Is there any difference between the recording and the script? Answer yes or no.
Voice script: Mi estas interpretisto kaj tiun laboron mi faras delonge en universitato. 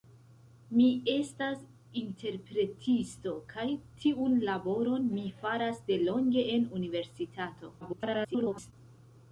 yes